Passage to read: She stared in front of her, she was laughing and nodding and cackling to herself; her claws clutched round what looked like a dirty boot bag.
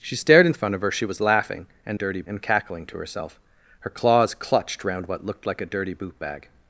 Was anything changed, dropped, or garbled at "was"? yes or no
no